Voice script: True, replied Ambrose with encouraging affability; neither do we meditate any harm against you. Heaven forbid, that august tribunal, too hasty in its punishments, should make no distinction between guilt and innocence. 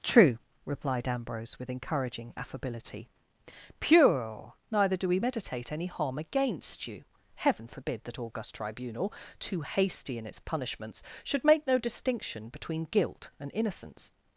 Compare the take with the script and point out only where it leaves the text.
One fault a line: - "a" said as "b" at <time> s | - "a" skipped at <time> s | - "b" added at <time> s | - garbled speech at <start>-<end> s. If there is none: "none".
- "pure" added at 3.8 s